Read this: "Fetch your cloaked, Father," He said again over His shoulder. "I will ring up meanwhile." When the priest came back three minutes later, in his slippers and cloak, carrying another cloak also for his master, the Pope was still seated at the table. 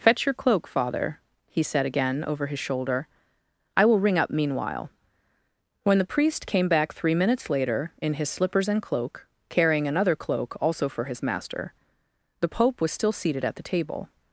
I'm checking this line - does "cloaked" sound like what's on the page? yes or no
no